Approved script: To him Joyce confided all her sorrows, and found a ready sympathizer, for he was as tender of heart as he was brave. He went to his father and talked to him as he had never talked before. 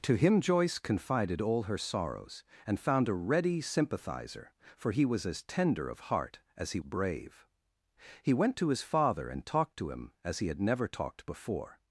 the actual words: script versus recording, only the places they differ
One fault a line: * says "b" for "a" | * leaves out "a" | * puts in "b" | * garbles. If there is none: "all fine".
* leaves out "was"